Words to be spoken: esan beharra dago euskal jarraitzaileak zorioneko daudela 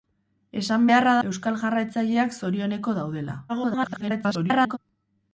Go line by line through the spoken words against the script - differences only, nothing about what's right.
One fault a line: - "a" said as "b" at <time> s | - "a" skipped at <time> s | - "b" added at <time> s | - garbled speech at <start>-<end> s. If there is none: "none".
- "dago" skipped at 1.1 s
- garbled speech at 3.5-4.8 s